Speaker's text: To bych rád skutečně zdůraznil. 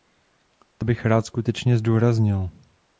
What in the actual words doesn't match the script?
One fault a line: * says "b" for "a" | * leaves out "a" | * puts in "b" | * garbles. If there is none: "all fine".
all fine